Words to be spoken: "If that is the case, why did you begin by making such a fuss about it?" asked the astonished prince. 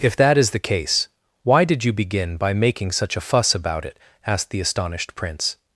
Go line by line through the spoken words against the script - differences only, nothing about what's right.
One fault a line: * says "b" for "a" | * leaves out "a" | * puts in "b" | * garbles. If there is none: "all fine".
all fine